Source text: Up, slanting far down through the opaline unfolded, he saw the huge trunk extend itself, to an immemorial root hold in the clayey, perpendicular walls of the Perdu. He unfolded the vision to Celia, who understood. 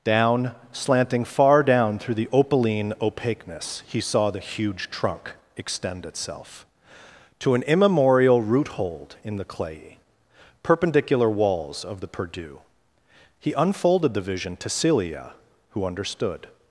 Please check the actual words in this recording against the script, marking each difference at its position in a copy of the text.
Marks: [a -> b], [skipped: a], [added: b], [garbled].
[Up, -> Down] slanting far down through the opaline [unfolded, -> opaqueness] he saw the huge trunk extend itself, to an immemorial root hold in the clayey, perpendicular walls of the Perdu. He unfolded the vision to Celia, who understood.